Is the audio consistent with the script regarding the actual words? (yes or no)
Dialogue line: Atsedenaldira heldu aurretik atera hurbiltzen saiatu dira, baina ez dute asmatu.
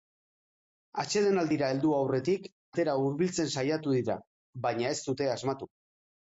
yes